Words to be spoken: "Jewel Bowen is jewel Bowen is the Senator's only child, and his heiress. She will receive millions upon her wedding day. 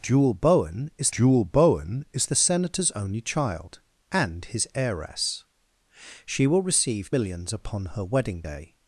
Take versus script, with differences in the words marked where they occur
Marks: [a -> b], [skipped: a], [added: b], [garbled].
"Jewel Bowen is jewel Bowen is the Senator's only child, and his heiress. She will receive millions upon her wedding day.